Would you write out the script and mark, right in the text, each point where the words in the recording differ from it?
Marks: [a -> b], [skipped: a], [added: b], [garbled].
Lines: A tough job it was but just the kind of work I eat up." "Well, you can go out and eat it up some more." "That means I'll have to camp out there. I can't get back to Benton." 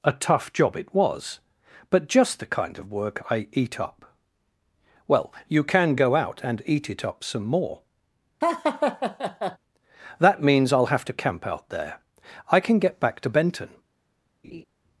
A tough job it was but just the kind of work I eat up." "Well, you can go out and eat it up some more." "That means I'll have to camp out there. I [can't -> can] get back to Benton."